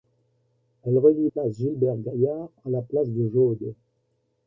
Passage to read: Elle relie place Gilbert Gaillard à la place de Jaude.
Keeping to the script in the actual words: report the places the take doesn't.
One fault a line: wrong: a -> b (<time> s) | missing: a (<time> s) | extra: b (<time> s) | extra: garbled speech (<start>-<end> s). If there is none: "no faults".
no faults